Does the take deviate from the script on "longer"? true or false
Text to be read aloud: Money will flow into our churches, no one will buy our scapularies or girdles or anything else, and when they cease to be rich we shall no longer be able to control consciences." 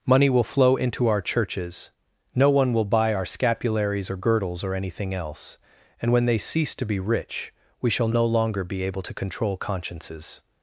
false